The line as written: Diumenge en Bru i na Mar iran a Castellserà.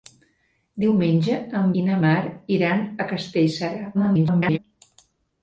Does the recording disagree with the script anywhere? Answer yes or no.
yes